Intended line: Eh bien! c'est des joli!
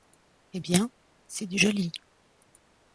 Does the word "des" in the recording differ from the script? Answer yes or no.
yes